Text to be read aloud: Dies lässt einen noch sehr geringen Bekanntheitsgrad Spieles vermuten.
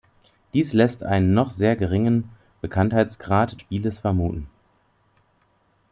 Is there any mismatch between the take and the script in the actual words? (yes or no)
no